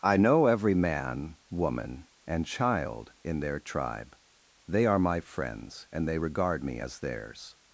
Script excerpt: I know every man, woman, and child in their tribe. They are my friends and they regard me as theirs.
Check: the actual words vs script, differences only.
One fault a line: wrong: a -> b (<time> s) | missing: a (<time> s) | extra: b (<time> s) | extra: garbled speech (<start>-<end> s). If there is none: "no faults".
no faults